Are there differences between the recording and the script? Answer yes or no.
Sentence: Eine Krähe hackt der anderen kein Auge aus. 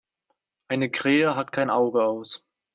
yes